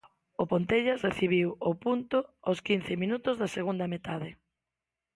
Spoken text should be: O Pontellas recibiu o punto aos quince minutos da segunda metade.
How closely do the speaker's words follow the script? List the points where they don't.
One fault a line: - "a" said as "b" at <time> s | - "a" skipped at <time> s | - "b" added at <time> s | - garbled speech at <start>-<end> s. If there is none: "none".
none